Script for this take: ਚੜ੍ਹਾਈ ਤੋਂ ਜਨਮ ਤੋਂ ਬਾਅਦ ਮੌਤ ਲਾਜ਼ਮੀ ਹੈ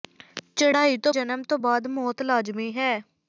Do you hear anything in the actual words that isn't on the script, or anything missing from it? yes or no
no